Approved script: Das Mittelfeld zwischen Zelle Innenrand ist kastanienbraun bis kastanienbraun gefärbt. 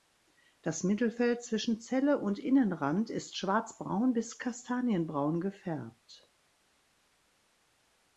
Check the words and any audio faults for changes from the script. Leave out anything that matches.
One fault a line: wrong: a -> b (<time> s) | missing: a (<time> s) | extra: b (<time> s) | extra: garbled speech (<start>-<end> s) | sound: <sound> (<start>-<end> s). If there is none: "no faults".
extra: und (2.2 s)
wrong: kastanienbraun -> schwarzbraun (3.4 s)